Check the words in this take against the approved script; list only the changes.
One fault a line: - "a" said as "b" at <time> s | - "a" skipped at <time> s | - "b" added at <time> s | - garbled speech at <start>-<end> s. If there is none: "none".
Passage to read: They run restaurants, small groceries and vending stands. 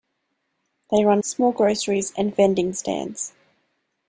- "restaurants" skipped at 1.2 s